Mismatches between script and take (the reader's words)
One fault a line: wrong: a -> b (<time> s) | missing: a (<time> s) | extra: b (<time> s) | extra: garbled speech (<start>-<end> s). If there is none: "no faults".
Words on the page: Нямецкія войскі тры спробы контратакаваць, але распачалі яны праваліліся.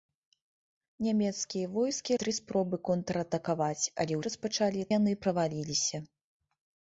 no faults